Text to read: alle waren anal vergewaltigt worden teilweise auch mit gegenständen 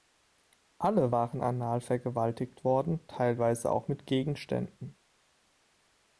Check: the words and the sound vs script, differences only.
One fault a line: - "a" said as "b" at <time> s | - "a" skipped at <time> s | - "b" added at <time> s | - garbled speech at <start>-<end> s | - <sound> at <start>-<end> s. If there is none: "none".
none